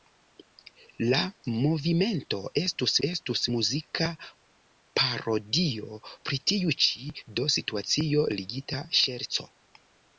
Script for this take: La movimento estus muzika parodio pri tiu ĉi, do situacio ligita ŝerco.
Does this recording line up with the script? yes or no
no